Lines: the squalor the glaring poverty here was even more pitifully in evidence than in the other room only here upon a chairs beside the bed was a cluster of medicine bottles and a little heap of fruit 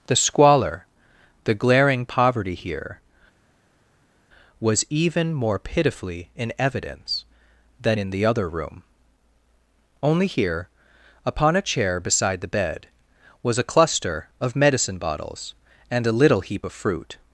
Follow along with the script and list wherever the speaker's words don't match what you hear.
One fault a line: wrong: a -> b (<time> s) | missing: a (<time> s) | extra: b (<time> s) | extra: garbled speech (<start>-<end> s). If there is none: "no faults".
wrong: chairs -> chair (11.6 s)